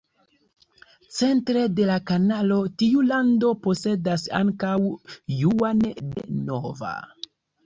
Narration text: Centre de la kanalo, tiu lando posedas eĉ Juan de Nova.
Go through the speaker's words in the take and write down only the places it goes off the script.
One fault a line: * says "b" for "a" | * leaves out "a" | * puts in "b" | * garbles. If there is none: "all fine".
* says "ankaŭ" for "eĉ"